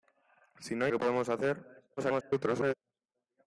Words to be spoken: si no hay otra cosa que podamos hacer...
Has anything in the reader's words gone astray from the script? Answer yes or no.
yes